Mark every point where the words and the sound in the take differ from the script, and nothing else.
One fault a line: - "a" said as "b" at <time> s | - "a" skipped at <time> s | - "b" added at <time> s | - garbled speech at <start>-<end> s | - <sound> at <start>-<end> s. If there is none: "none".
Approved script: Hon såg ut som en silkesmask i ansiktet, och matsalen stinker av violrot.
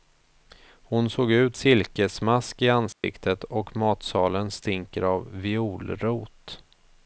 - "som en" skipped at 1.6 s
- dropout at 2.9-3.0 s